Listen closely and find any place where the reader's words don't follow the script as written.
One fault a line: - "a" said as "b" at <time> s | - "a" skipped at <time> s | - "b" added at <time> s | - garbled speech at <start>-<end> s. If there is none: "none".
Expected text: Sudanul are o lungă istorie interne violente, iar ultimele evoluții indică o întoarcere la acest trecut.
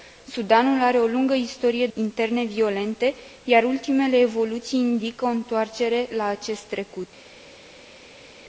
none